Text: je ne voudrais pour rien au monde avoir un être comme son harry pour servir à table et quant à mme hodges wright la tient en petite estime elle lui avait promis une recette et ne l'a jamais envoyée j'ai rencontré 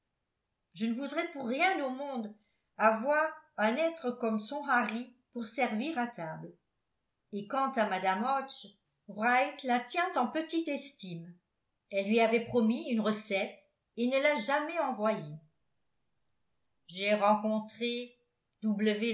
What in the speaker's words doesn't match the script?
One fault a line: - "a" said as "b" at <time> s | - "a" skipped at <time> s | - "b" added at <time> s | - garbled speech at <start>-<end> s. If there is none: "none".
none